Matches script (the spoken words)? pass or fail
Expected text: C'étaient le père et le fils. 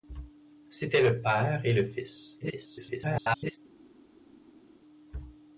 fail